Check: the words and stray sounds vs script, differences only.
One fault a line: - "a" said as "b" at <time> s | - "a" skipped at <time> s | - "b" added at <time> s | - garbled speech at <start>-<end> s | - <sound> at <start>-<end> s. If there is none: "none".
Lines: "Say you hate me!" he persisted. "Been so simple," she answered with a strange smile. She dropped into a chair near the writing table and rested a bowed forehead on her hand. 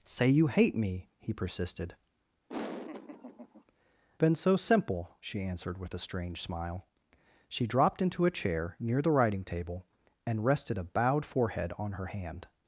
- laugh at 2.5-3.6 s